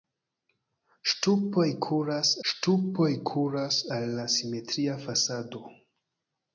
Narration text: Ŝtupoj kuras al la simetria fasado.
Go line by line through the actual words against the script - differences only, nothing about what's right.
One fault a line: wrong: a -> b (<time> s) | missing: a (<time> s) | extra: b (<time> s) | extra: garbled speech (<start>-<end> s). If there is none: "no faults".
extra: ŝtupoj kuras (2.5 s)